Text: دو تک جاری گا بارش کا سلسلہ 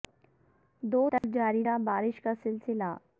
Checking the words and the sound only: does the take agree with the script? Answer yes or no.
no